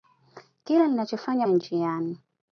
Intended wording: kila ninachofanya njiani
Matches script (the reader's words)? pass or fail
pass